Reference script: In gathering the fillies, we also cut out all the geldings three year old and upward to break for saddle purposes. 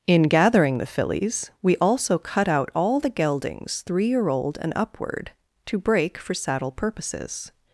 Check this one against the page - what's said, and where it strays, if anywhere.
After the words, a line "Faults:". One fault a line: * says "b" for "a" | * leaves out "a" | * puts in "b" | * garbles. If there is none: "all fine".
In gathering the fillies, we also cut out all the geldings three year old and upward to break for saddle purposes.
Faults:
all fine